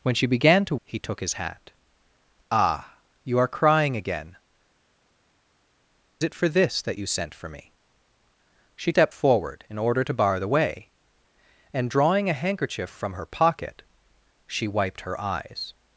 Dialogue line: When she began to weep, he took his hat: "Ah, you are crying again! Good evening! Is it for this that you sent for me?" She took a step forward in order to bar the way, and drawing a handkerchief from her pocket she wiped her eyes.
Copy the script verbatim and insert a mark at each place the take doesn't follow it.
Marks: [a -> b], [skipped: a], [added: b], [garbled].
When she began to [skipped: weep,] he took his hat: "Ah, you are crying again! [skipped: Good evening! Is] it for this that you sent for me?" She [skipped: took a] step forward in order to bar the way, and drawing a handkerchief from her pocket she wiped her eyes.